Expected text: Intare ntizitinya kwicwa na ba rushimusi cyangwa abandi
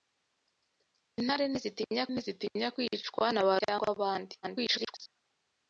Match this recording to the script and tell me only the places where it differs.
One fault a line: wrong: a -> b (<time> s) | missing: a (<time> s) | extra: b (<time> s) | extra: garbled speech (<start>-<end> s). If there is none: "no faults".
extra: ntizitinya (2.1 s)
missing: rushimusi (3.5 s)
extra: garbled speech (4.4-5.1 s)